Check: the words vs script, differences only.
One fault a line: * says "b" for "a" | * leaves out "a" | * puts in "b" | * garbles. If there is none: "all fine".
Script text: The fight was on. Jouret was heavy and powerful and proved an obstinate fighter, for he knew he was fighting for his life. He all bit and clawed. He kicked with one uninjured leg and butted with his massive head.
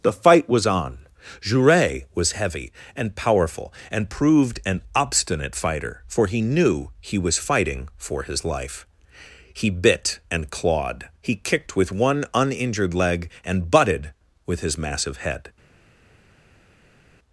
* leaves out "all"